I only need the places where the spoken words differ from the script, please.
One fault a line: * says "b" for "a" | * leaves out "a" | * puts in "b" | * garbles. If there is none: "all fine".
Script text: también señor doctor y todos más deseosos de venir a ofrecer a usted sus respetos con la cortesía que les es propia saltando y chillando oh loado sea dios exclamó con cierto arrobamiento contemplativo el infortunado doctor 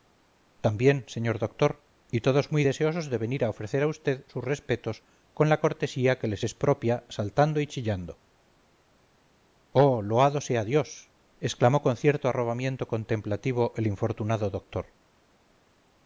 * says "muy" for "más"